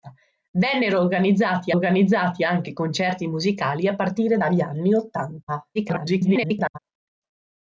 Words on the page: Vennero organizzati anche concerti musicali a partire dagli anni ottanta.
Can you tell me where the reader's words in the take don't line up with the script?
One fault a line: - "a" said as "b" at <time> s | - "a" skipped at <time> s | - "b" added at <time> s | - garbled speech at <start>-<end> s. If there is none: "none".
- "organizzati" added at 1.7 s
- garbled speech at 5.7-6.8 s